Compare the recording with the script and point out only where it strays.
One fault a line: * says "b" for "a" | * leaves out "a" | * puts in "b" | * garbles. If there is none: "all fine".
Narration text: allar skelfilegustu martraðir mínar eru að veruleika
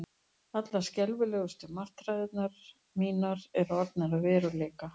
* puts in "orðnar"